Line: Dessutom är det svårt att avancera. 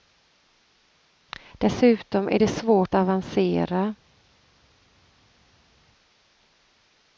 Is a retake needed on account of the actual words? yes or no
yes